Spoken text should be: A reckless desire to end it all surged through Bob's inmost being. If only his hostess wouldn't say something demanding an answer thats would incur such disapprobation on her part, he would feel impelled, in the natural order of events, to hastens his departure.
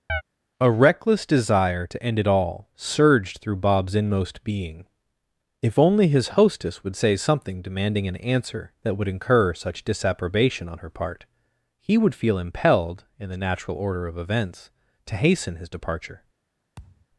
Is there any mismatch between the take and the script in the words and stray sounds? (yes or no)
yes